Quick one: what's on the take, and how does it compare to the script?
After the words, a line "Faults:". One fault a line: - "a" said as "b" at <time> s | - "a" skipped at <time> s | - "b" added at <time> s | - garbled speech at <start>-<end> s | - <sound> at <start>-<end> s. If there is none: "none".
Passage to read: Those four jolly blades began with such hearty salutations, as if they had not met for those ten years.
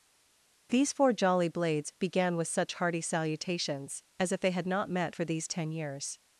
These four jolly blades began with such hearty salutations, as if they had not met for these ten years.
Faults:
- "Those" said as "These" at 0.7 s
- "those" said as "these" at 5.2 s